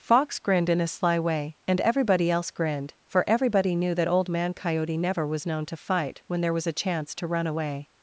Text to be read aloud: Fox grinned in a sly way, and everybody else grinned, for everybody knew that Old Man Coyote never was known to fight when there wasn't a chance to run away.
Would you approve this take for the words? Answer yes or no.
no